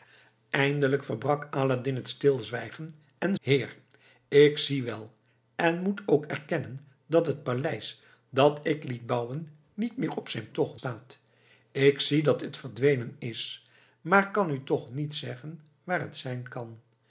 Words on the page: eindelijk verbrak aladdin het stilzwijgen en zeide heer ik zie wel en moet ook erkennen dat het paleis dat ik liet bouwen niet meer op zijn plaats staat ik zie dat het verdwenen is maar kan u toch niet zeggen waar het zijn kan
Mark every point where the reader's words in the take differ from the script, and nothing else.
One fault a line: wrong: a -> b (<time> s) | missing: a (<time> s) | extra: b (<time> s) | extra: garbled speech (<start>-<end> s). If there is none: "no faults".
missing: zeide (3.4 s)
wrong: plaats -> toch (10.5 s)